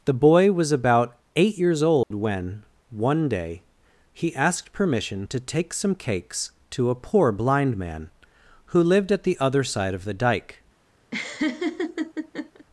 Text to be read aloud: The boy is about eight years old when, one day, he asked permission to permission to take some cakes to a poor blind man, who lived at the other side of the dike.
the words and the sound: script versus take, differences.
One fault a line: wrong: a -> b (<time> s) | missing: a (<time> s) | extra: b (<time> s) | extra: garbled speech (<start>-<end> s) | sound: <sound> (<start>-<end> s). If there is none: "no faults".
wrong: is -> was (0.5 s)
sound: dropout (2.0-2.1 s)
missing: permission to (5.4 s)
sound: laugh (11.1-12.7 s)